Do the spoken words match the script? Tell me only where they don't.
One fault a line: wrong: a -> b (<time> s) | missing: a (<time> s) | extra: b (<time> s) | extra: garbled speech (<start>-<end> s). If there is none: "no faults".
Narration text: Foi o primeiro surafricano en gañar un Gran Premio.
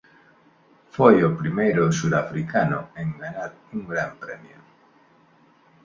no faults